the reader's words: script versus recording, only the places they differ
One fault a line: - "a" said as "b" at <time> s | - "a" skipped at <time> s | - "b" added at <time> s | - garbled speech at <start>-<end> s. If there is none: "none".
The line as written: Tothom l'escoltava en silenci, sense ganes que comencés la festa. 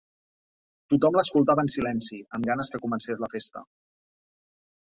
- "sense" said as "amb" at 2.4 s